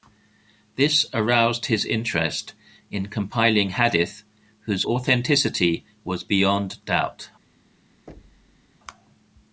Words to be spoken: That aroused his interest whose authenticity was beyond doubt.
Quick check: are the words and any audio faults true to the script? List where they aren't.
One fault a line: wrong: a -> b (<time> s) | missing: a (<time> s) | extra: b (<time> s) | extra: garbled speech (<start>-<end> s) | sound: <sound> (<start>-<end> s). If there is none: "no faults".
wrong: That -> This (0.8 s)
extra: in compiling hadith (2.9 s)
sound: thud (8.1-8.7 s)